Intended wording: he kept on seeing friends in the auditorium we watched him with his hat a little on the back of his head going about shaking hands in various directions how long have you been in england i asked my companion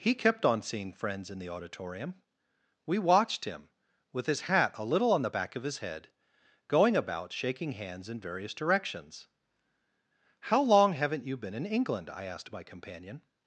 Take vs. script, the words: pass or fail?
fail